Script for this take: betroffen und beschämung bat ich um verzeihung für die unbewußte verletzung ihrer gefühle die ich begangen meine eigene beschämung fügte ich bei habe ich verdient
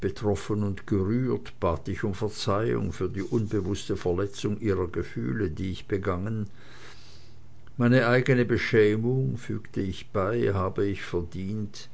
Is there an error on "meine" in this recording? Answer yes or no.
no